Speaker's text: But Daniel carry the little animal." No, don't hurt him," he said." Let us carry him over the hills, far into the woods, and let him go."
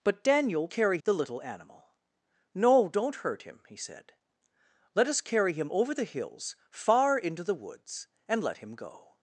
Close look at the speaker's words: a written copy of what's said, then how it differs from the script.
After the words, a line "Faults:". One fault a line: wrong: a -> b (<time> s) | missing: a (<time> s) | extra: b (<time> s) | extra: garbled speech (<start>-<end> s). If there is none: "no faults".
But Daniel carry the little animal." No, don't hurt him," he said." Let us carry him over the hills, far into the woods, and let him go."
Faults:
no faults